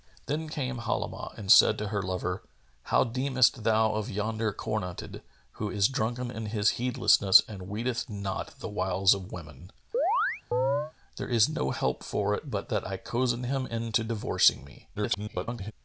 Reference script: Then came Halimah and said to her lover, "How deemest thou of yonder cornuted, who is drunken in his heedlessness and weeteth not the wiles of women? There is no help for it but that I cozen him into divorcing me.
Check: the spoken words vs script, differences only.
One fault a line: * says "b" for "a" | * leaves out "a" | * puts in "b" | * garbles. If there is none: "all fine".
* garbles